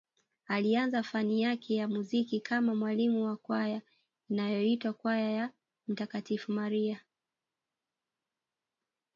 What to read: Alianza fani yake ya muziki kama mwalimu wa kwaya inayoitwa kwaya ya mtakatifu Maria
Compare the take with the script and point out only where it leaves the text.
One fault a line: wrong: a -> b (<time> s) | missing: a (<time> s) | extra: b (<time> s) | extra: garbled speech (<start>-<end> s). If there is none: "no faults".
no faults